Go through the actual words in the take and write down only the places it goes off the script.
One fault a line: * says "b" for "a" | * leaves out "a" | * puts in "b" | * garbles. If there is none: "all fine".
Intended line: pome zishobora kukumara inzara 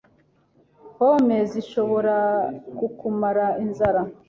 all fine